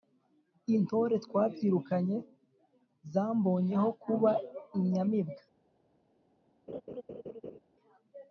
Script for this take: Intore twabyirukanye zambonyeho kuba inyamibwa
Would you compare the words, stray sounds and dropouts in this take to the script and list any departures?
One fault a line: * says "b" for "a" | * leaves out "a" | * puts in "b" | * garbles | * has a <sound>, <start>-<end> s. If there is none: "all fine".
* has a laugh, 6.7-7.6 s